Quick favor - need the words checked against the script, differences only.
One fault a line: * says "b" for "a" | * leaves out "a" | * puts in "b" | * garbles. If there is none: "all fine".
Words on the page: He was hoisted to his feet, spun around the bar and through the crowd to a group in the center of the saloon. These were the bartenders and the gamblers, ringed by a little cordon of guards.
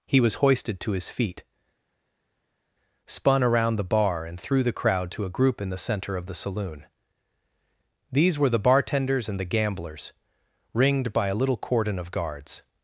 all fine